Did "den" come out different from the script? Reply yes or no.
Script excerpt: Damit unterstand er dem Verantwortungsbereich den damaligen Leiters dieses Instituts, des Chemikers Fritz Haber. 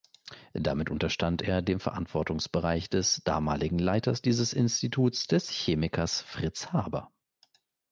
yes